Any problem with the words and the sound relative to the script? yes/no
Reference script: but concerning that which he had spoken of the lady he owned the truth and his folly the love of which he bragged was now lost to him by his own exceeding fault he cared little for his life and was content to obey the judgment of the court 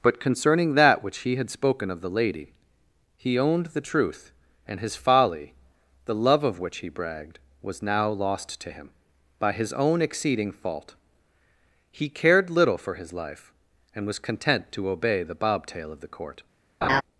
yes